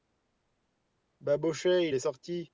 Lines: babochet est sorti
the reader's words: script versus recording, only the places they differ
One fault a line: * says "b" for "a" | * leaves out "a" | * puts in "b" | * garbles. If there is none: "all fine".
all fine